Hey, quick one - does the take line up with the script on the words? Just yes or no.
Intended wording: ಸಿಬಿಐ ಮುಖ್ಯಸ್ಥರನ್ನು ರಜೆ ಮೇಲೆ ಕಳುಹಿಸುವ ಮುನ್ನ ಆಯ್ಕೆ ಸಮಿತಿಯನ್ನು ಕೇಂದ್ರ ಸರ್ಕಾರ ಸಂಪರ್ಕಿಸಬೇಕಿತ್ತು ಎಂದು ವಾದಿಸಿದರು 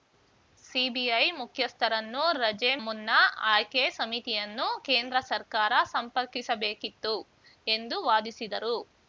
no